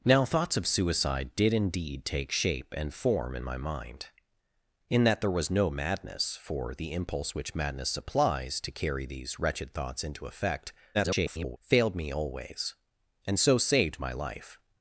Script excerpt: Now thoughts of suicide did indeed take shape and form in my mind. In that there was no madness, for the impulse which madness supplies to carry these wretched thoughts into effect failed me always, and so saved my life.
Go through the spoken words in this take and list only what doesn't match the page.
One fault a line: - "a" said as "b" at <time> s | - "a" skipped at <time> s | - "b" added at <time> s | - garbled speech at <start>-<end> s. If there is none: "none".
- garbled speech at 10.9-11.6 s